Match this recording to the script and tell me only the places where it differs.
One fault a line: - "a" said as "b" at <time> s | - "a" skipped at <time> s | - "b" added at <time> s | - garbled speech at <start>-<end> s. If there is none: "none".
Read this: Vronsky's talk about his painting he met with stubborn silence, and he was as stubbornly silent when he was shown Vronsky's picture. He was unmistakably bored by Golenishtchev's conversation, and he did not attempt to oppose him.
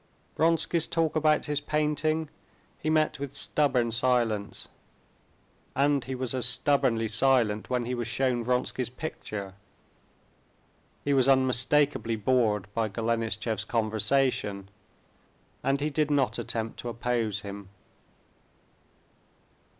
none